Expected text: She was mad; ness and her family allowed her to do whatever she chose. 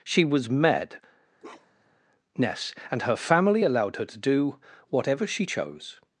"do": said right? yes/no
yes